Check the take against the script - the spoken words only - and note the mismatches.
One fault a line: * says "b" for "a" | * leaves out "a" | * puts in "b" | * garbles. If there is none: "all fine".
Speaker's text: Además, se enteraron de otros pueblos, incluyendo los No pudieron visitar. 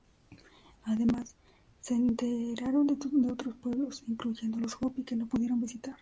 * puts in "Hopi que"